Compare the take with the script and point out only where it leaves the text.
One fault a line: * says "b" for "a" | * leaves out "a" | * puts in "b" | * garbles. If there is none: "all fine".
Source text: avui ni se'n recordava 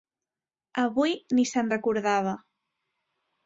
all fine